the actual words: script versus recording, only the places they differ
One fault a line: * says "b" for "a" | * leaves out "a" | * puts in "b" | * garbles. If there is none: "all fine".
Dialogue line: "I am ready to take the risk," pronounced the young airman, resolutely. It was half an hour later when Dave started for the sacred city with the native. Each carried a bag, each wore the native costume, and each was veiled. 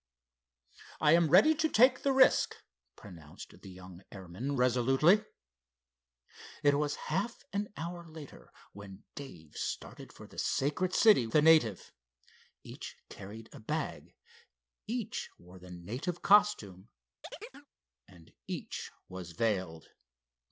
* leaves out "with"